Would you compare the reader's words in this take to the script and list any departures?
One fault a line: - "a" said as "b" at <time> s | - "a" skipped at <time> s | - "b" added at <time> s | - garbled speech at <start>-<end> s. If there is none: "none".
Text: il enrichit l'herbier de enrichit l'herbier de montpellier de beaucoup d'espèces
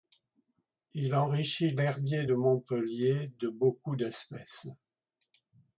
- "enrichit l'herbier de" skipped at 2.3 s